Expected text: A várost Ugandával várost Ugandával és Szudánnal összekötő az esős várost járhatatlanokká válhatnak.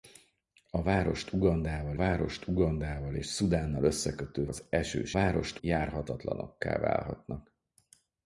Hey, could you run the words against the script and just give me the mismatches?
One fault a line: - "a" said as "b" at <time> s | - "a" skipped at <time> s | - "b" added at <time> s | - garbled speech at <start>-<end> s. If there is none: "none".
none